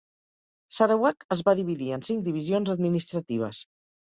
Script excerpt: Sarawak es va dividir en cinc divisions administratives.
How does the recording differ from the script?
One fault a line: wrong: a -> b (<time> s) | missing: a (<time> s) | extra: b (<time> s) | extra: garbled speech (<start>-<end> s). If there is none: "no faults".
no faults